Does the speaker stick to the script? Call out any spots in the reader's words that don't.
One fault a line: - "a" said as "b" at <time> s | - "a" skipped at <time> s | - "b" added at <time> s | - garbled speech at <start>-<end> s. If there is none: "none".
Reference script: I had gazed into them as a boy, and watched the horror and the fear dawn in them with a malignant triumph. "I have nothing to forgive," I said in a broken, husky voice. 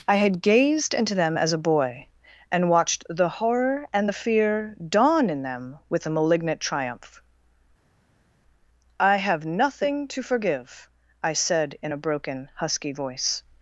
none